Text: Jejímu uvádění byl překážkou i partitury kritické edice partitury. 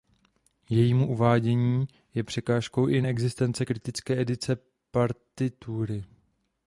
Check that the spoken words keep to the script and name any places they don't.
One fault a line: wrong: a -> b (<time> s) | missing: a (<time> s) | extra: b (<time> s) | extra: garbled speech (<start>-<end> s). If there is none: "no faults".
wrong: byl -> je (2.1 s)
wrong: partitury -> neexistence (3.0 s)